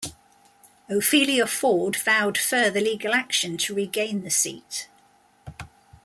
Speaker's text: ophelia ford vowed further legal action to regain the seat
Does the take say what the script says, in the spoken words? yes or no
yes